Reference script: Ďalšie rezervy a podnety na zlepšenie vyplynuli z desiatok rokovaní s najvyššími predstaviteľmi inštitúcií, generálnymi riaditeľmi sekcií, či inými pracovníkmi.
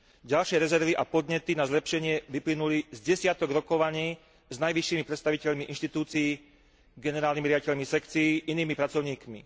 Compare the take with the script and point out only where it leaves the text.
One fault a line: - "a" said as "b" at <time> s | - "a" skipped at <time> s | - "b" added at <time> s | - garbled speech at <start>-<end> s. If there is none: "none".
- "či" skipped at 8.4 s